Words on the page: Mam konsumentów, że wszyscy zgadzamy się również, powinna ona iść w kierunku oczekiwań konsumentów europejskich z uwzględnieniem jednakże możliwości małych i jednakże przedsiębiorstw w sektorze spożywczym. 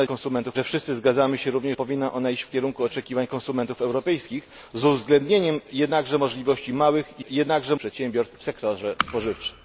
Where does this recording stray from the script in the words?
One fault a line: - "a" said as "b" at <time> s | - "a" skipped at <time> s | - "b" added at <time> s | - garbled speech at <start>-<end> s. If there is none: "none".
none